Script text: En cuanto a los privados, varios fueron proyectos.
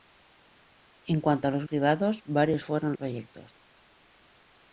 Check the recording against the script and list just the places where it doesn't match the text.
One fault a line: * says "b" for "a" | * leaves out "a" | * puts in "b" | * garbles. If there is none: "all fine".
all fine